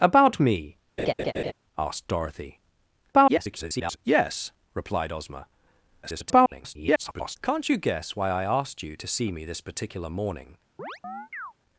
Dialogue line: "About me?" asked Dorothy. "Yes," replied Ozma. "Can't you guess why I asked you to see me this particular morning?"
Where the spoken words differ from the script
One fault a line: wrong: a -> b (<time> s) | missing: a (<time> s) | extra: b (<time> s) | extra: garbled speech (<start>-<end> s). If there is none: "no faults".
extra: garbled speech (3.1-4.0 s)
extra: garbled speech (6.0-7.4 s)